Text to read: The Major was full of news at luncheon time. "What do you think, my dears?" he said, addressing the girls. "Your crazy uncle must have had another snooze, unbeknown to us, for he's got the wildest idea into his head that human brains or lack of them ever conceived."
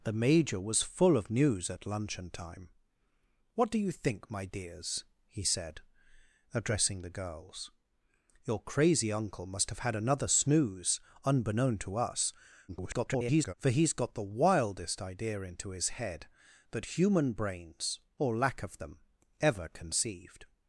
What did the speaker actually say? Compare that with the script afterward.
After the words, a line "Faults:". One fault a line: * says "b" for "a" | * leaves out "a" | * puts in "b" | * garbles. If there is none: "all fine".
The Major was full of news at luncheon time. "What do you think, my dears?" he said, addressing the girls. "Your crazy uncle must have had another snooze, unbeknown to us, [garbled] for he's got the wildest idea into his head that human brains or lack of them ever conceived."
Faults:
* garbles